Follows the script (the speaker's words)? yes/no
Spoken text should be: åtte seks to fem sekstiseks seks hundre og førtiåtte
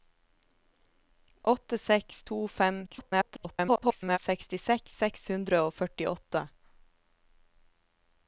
no